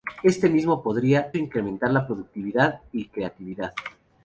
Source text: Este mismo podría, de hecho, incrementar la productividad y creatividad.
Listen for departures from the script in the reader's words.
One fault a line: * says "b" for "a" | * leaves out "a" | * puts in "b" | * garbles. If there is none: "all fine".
* leaves out "de hecho"